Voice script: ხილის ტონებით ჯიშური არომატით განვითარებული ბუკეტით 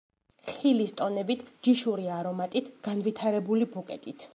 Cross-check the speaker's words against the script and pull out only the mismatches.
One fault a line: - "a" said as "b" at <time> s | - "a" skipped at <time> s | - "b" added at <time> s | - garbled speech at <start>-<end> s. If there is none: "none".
none